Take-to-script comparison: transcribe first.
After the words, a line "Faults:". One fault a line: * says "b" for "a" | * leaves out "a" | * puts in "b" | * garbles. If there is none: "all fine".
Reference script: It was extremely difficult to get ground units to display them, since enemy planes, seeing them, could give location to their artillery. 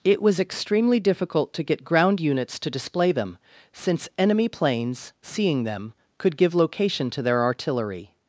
It was extremely difficult to get ground units to display them, since enemy planes, seeing them, could give location to their artillery.
Faults:
all fine